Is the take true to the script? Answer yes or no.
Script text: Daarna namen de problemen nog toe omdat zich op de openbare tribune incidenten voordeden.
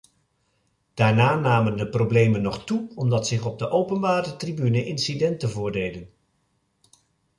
yes